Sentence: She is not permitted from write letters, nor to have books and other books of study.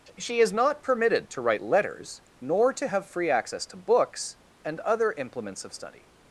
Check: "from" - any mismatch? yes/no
yes